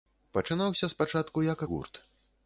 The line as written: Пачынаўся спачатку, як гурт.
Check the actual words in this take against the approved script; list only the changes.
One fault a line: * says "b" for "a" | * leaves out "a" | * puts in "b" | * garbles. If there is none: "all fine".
all fine